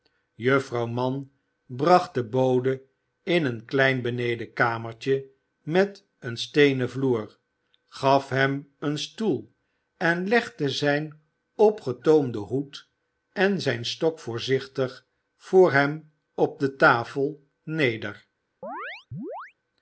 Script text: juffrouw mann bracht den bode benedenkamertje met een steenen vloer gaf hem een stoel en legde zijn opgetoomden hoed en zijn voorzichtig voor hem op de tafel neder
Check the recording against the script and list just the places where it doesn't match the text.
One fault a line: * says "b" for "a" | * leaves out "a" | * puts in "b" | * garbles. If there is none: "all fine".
* puts in "in een klein"
* puts in "stok"